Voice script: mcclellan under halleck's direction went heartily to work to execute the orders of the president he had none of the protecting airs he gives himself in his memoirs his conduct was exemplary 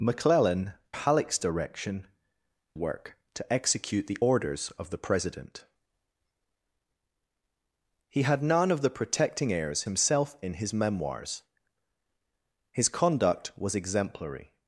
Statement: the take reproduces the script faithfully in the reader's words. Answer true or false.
false